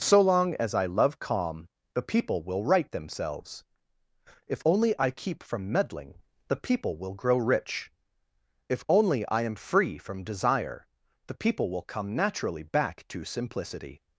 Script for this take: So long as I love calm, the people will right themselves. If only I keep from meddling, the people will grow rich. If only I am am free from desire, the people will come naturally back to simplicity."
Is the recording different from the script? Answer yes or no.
yes